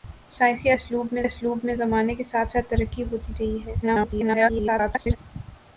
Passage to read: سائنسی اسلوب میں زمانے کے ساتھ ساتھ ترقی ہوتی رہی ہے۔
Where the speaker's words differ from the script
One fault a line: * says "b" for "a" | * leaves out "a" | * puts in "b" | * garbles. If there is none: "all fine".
* puts in "اسلوب میں"
* garbles